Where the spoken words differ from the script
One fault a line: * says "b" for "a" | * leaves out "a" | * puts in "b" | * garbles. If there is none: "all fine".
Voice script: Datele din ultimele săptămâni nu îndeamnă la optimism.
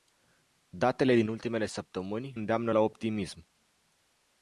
* leaves out "nu"